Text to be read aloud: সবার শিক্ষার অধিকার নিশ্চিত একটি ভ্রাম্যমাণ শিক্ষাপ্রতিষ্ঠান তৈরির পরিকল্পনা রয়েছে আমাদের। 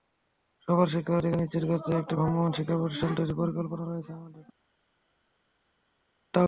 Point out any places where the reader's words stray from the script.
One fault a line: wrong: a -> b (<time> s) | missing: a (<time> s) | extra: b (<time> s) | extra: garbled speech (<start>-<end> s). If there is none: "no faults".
extra: করতে (1.6 s)